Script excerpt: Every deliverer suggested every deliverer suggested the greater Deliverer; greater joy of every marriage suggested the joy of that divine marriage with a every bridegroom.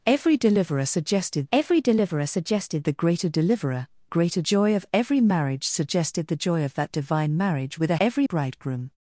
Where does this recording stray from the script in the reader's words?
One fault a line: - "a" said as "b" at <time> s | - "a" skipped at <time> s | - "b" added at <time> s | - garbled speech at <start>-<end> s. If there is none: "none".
none